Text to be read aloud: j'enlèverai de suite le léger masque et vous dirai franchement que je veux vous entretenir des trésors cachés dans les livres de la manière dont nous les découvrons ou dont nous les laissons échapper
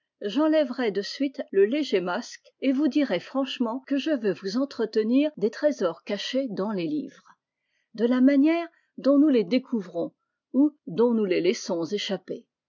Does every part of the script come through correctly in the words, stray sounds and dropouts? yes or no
yes